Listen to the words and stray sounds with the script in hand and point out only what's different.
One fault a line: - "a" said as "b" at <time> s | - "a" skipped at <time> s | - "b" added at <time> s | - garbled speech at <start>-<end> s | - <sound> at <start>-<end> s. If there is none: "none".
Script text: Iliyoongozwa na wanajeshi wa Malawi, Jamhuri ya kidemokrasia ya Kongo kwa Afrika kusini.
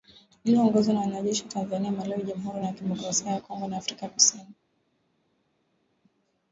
- "Tanzania" added at 1.5 s
- "kwa" said as "na" at 3.7 s